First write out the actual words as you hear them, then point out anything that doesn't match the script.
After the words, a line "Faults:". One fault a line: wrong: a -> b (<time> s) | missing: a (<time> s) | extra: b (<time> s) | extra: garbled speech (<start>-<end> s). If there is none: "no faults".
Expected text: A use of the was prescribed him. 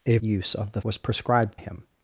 A use of the was prescribed him.
Faults:
no faults